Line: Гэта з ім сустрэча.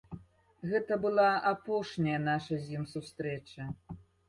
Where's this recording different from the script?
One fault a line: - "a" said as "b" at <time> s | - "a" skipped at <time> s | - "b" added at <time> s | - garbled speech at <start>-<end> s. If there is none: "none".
- "была апошняя наша" added at 1.1 s